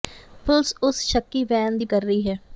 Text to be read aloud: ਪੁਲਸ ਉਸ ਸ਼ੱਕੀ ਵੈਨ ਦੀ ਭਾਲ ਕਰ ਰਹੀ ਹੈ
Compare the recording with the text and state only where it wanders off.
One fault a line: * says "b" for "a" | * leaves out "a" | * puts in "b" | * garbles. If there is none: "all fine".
* leaves out "ਭਾਲ"